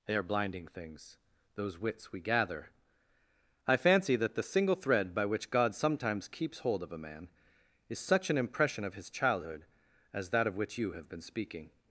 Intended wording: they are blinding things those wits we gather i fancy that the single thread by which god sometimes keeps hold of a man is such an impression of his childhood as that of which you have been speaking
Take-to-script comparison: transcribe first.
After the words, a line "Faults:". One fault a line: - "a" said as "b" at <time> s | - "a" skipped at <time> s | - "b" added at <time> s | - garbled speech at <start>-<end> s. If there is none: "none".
they are blinding things those wits we gather i fancy that the single thread by which god sometimes keeps hold of a man is such an impression of his childhood as that of which you have been speaking
Faults:
none